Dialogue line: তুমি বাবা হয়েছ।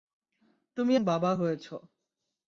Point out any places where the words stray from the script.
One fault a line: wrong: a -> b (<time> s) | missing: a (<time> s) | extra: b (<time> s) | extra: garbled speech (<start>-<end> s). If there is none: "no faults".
no faults